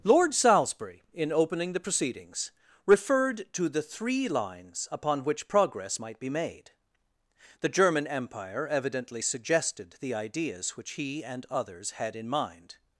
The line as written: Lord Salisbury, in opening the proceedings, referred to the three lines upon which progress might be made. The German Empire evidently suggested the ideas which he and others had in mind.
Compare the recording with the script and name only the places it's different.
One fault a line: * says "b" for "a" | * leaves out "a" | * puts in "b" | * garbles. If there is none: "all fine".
all fine